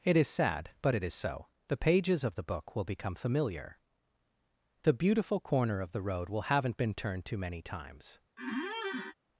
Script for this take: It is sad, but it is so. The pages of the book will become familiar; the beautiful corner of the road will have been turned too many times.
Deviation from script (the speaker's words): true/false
true